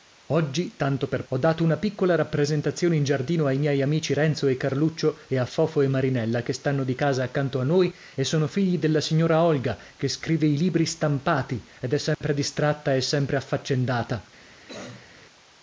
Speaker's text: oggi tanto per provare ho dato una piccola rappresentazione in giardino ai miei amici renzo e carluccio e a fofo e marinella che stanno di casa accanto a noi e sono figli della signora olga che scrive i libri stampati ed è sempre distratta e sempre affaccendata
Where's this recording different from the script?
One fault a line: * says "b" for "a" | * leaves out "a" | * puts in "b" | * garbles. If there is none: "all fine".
* leaves out "provare"